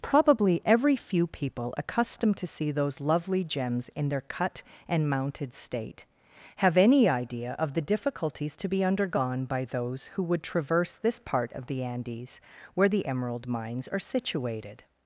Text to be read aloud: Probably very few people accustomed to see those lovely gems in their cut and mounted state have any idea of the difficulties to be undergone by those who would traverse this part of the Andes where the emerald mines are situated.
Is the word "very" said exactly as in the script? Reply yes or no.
no